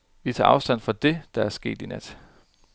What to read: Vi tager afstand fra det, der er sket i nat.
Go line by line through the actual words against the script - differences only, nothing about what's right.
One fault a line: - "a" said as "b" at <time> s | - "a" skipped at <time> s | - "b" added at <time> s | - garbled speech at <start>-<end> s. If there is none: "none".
none